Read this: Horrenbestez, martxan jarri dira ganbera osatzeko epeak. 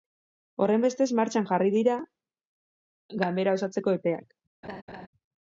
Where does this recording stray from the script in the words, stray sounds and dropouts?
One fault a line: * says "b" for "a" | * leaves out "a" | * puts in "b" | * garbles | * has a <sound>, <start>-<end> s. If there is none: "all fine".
* has a laugh, 4.6-5.1 s